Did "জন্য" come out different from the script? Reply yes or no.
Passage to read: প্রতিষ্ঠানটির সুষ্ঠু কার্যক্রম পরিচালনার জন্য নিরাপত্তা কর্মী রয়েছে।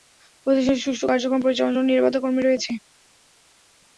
no